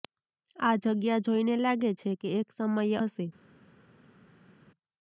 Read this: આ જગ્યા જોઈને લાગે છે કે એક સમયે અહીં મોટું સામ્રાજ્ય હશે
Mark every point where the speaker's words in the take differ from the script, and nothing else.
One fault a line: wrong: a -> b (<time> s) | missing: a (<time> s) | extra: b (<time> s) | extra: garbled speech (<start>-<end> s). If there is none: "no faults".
missing: અહીં મોટું સામ્રાજ્ય (3.0 s)